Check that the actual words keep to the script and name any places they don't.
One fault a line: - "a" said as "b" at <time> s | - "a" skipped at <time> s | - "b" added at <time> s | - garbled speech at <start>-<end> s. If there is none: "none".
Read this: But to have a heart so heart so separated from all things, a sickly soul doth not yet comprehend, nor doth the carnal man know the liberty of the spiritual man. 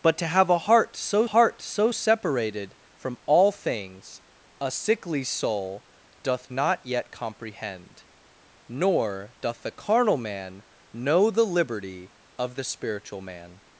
none